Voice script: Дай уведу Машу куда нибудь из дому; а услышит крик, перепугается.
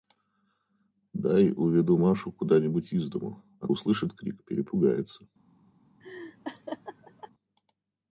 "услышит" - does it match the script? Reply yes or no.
yes